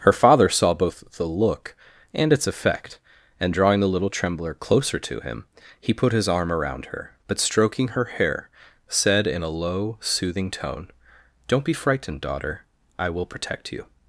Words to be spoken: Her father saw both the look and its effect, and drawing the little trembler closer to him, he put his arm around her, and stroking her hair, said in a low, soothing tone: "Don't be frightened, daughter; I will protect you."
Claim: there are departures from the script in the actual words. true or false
true